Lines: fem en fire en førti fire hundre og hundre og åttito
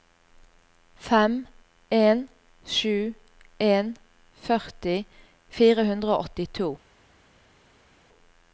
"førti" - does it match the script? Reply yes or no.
yes